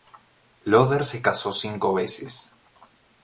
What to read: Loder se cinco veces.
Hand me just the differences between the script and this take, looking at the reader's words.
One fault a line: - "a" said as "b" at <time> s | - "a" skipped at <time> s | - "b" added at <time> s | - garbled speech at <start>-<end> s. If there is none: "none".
- "casó" added at 1.2 s